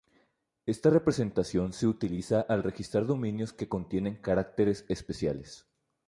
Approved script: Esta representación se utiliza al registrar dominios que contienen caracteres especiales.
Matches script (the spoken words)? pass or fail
pass